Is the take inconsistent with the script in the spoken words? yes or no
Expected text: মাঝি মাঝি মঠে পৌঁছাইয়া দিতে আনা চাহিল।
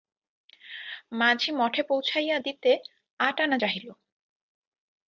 yes